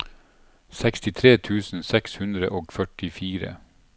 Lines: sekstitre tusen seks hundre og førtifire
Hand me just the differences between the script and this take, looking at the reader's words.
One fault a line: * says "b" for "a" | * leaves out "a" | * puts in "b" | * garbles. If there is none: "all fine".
all fine